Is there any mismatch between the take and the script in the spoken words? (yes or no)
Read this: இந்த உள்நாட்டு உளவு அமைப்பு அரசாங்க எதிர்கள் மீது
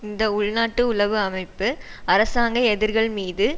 no